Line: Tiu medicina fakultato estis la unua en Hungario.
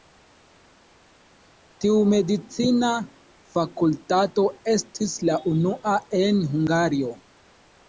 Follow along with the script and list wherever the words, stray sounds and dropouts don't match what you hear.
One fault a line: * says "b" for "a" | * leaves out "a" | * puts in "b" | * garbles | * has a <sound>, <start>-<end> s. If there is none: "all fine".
all fine